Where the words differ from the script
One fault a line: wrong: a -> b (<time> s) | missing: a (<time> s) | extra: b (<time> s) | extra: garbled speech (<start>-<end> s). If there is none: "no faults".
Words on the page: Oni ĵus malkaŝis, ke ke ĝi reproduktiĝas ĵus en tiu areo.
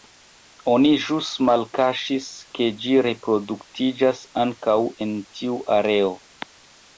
missing: ke (2.7 s)
wrong: ĵus -> ankaŭ (4.5 s)